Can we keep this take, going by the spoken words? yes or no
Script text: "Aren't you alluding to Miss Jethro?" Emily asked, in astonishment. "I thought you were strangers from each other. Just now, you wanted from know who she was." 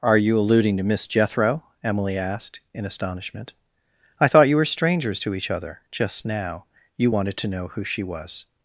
no